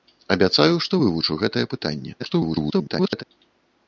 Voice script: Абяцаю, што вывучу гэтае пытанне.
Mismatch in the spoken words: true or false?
true